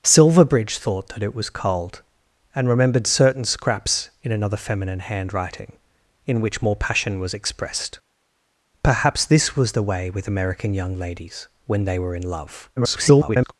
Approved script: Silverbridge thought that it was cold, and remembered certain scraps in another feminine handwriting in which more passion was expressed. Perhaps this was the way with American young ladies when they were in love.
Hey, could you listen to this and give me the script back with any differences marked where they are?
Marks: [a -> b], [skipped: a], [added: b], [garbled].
Silverbridge thought that it was cold, and remembered certain scraps in another feminine handwriting in which more passion was expressed. Perhaps this was the way with American young ladies when they were in love. [garbled]